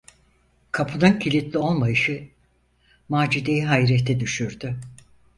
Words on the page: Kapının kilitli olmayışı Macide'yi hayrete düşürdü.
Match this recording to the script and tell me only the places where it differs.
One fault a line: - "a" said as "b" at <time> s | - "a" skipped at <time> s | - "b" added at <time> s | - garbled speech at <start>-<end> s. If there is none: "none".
none